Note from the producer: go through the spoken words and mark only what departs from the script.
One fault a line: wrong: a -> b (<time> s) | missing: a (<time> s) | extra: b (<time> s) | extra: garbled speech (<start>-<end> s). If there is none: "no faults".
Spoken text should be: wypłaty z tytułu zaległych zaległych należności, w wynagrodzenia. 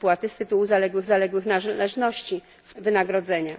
no faults